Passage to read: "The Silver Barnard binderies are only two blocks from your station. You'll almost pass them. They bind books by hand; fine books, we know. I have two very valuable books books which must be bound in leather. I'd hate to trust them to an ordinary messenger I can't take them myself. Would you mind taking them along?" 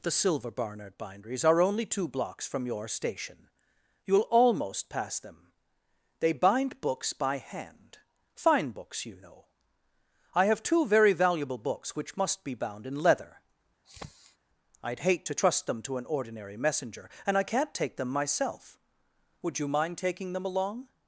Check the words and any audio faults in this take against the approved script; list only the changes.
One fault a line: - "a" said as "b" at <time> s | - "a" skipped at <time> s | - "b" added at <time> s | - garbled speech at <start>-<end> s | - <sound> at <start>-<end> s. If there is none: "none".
- "we" said as "you" at 9.1 s
- "books" skipped at 11.9 s
- sniff at 13.8-14.4 s
- "and" added at 17.3 s